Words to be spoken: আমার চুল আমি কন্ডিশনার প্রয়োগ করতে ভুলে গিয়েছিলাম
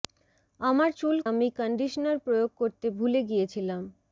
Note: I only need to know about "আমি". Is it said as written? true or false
true